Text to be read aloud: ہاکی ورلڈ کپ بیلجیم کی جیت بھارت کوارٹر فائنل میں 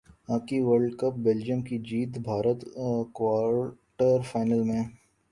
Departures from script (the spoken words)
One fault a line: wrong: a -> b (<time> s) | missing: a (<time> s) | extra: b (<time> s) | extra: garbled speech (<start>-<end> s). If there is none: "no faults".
no faults